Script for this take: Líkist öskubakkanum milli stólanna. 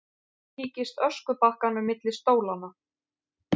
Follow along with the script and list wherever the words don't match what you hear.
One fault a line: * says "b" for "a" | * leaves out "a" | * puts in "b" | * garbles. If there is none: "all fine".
all fine